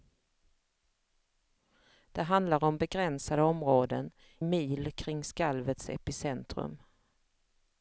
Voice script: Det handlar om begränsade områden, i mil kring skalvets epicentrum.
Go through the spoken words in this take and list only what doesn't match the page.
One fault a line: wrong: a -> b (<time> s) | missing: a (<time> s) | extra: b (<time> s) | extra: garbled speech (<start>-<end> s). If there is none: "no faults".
missing: i (4.1 s)